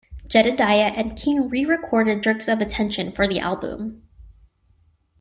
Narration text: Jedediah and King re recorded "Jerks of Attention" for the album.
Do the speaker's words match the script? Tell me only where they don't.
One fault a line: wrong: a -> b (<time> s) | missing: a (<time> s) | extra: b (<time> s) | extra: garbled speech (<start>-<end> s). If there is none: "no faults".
no faults